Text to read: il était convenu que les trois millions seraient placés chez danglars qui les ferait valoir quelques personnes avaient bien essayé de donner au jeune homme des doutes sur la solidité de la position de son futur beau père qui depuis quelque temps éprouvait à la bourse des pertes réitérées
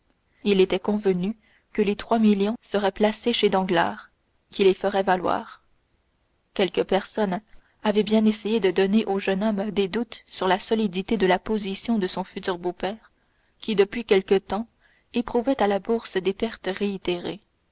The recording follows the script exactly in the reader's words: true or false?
true